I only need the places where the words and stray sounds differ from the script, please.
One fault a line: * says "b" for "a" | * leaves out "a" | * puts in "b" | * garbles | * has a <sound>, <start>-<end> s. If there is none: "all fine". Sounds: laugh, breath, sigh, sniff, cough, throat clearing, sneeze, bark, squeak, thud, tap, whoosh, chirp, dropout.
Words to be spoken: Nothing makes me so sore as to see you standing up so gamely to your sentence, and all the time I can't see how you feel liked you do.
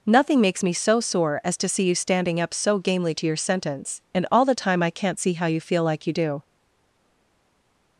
* says "like" for "liked"